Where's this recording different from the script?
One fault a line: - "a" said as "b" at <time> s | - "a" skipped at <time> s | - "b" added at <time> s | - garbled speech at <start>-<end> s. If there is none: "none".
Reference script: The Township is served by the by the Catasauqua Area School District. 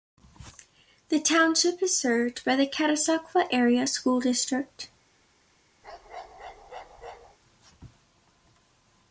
- "by the" skipped at 2.6 s